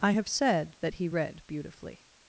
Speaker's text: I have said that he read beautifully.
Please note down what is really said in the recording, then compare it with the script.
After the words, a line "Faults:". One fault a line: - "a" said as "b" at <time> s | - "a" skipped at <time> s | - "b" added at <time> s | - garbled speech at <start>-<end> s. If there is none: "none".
I have said that he read beautifully.
Faults:
none